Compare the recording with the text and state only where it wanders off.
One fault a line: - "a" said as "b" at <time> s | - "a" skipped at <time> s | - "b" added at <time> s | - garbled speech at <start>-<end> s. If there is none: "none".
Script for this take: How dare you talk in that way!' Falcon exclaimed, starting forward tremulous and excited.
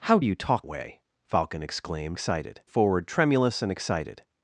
- "dare" skipped at 0.2 s
- "in that" skipped at 0.7 s
- "starting" said as "excited" at 2.1 s